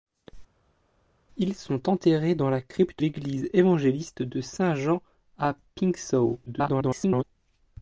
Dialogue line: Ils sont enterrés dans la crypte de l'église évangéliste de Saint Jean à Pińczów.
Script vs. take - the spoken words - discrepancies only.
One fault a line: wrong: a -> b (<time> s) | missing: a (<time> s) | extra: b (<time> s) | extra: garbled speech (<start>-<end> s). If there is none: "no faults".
missing: de (3.0 s)
extra: garbled speech (6.5-7.2 s)